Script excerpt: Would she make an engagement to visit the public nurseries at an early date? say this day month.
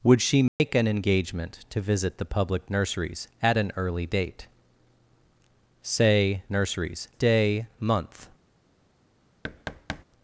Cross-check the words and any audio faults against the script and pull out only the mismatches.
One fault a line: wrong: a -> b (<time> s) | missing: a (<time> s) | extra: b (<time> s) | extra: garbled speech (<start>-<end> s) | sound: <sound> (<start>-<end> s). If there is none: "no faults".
sound: dropout (0.5-0.6 s)
wrong: this -> nurseries (6.5 s)
sound: thud (9.4-10.0 s)